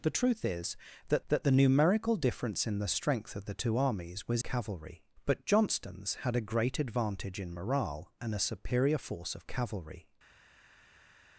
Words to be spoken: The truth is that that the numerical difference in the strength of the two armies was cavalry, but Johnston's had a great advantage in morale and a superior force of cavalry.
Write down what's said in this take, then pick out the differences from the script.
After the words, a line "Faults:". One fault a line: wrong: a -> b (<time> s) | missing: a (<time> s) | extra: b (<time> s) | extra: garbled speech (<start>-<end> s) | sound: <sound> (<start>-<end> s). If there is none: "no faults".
The truth is that that the numerical difference in the strength of the two armies was cavalry, but Johnston's had a great advantage in morale and a superior force of cavalry.
Faults:
no faults